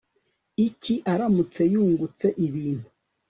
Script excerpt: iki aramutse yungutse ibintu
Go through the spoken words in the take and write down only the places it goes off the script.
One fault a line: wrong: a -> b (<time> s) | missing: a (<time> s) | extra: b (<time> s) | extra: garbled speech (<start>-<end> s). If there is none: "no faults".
no faults